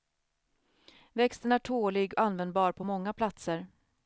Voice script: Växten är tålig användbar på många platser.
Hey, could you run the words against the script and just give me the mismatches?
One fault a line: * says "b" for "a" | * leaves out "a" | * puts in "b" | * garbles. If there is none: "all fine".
all fine